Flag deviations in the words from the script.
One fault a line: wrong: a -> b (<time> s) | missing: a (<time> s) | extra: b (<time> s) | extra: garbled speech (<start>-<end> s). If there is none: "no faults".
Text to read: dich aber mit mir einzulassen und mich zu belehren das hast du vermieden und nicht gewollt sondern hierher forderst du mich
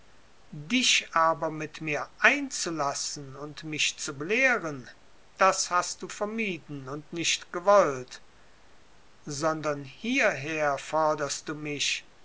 no faults